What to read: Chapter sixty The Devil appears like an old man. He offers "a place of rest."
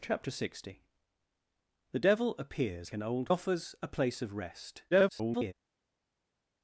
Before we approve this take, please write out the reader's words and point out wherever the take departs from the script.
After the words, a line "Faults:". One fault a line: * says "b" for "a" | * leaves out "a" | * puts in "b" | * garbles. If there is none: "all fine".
Chapter sixty The Devil appears an old offers "a place of rest." [garbled]
Faults:
* leaves out "like"
* leaves out "man He"
* garbles